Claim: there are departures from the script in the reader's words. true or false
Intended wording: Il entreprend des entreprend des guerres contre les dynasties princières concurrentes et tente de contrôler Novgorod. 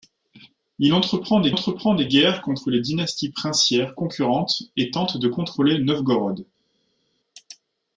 false